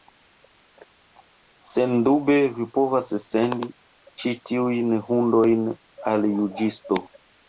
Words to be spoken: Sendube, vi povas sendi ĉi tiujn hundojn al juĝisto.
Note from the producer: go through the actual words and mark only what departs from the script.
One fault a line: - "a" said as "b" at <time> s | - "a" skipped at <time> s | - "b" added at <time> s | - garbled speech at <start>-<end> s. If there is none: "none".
none